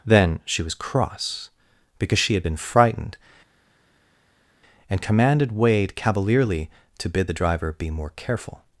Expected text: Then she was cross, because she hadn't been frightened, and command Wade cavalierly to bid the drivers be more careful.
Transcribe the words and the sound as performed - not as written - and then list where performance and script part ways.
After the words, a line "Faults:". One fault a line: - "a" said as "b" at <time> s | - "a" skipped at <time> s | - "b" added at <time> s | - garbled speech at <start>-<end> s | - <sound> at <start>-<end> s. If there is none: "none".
Then she was cross, because she had been frightened, and commanded Wade cavalierly to bid the driver be more careful.
Faults:
- "hadn't" said as "had" at 2.3 s
- "command" said as "commanded" at 5.0 s
- "drivers" said as "driver" at 7.3 s